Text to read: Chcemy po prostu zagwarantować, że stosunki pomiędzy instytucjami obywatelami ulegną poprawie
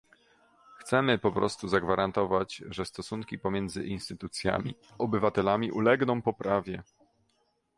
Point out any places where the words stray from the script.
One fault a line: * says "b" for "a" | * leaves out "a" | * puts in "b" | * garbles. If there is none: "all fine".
all fine